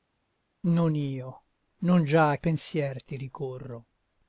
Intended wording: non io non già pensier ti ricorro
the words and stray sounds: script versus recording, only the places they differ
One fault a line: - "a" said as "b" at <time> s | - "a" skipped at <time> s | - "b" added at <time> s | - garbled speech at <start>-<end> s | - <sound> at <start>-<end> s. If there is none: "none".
none